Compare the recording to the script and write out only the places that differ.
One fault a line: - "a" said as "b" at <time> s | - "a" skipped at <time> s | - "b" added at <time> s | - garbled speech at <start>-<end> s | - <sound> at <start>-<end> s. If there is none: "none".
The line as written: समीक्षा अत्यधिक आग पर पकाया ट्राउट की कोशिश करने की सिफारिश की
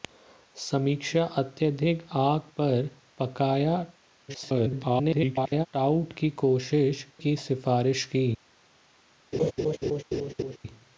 - garbled speech at 4.3-5.7 s
- "करने" skipped at 7.0 s
- laugh at 9.3-10.6 s